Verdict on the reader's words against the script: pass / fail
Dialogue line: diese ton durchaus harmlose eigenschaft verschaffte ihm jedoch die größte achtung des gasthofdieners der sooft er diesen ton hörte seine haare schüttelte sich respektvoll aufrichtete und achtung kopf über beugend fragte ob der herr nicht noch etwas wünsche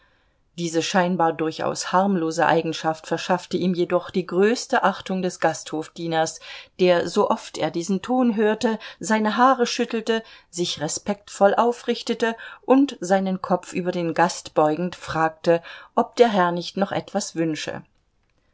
fail